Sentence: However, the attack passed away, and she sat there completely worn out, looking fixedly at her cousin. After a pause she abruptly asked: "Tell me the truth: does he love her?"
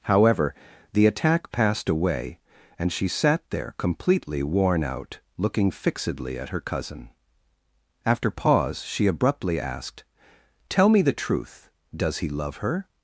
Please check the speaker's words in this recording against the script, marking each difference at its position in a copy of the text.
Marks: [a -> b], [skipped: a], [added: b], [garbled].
However, the attack passed away, and she sat there completely worn out, looking fixedly at her cousin. After [skipped: a] pause she abruptly asked: "Tell me the truth: does he love her?"